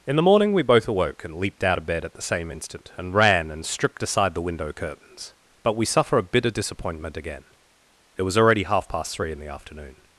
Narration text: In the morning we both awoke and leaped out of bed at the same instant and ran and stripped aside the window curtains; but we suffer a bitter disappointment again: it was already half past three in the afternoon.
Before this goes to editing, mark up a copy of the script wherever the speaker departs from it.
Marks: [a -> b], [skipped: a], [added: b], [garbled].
In the morning we both awoke and leaped out of bed at the same instant and ran and stripped aside the window curtains; but we suffer a bitter disappointment again: it was already half past three in the afternoon.